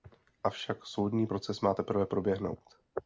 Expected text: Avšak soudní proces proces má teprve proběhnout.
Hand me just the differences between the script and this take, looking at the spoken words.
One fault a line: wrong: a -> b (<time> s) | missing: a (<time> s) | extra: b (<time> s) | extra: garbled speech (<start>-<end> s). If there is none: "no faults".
missing: proces (1.6 s)